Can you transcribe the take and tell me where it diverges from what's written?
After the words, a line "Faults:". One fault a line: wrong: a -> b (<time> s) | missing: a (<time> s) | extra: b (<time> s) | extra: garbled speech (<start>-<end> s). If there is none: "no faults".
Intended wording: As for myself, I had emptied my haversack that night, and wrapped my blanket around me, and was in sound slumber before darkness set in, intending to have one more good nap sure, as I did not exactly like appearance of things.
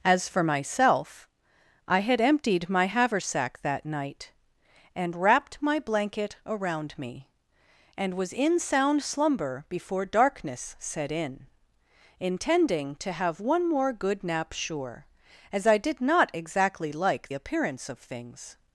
As for myself, I had emptied my haversack that night, and wrapped my blanket around me, and was in sound slumber before darkness set in, intending to have one more good nap sure, as I did not exactly like appearance of things.
Faults:
no faults